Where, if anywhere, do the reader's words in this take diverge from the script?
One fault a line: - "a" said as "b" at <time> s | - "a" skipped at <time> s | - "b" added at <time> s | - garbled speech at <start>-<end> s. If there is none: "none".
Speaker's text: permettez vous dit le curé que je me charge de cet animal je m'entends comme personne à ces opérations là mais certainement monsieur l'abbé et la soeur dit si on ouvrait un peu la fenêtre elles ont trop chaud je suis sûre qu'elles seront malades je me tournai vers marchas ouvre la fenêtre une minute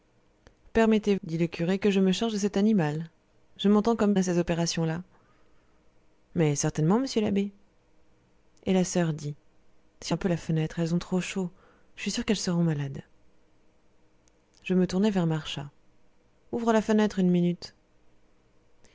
- "vous" skipped at 1.1 s
- "personne" skipped at 4.1 s
- "on ouvrait" skipped at 10.1 s